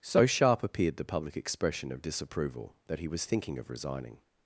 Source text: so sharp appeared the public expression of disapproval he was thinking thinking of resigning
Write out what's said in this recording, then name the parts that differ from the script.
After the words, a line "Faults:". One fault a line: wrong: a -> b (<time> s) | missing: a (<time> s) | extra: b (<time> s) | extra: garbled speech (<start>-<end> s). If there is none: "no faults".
so sharp appeared the public expression of disapproval that he was thinking of resigning
Faults:
extra: that (2.9 s)
missing: thinking (3.6 s)